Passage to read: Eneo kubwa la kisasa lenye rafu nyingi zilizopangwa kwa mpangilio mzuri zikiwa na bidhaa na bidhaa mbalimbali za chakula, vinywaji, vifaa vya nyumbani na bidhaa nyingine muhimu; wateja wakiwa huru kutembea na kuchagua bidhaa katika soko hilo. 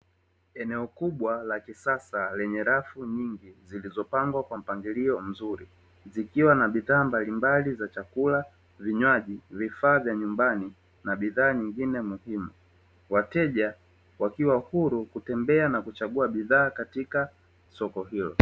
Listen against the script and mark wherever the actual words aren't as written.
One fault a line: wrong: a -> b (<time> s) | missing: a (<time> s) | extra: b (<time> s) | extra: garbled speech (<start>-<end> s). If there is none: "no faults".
missing: na bidhaa (7.0 s)